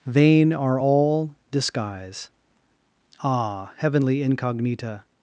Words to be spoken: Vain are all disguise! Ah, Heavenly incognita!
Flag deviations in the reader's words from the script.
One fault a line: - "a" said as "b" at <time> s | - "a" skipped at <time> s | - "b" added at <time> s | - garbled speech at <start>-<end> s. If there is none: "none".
none